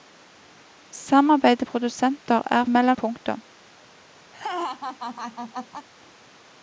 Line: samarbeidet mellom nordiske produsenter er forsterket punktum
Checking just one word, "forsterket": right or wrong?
wrong